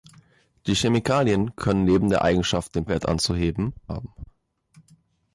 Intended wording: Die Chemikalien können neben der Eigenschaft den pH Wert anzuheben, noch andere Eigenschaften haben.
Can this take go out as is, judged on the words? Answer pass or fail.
fail